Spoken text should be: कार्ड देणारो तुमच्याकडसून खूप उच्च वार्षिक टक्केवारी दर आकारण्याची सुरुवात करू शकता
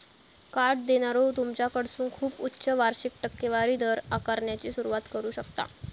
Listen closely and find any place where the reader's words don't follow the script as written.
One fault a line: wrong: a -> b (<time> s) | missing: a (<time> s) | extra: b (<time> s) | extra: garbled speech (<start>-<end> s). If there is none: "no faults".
no faults